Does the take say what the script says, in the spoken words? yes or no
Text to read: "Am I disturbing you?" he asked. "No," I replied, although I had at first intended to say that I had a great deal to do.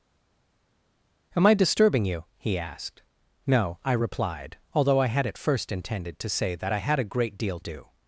no